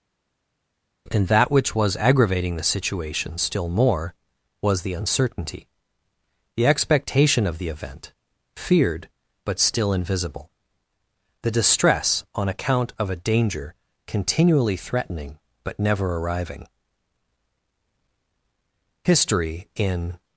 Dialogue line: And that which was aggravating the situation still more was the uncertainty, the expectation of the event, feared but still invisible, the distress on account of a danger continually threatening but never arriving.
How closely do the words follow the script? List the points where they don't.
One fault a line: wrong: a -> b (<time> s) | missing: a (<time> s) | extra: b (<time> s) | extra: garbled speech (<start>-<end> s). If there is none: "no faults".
extra: History in (19.0 s)